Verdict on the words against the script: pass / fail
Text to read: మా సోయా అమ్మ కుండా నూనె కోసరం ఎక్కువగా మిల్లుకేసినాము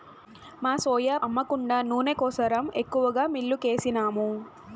pass